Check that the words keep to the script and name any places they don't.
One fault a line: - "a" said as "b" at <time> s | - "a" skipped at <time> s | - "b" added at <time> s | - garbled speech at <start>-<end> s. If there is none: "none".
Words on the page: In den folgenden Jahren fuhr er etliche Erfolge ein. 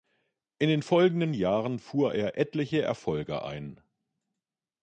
none